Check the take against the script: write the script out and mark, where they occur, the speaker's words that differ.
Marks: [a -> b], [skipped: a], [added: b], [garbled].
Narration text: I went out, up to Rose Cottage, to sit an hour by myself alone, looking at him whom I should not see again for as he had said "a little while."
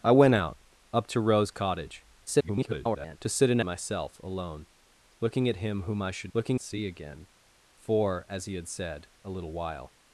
I went out, up to Rose Cottage, [garbled] to sit an [skipped: hour by] myself alone, looking at him whom I should [not -> looking] see again for as he had said "a little while."